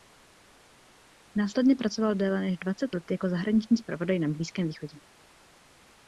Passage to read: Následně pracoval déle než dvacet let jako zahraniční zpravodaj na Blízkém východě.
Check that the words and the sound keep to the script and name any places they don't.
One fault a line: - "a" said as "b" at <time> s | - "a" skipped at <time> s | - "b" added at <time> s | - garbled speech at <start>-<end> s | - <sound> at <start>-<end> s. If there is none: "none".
none